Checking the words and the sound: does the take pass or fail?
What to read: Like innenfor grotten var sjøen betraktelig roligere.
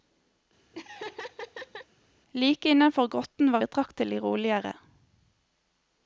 fail